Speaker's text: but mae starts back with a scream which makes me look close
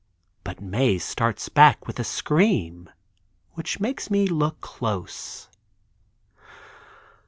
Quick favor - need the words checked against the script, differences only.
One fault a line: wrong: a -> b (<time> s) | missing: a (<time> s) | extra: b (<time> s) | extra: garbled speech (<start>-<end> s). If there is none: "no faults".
no faults